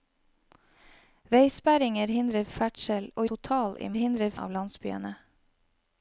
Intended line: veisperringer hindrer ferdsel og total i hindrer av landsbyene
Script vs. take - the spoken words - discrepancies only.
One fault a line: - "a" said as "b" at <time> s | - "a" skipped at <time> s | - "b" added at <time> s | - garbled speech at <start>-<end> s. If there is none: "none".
none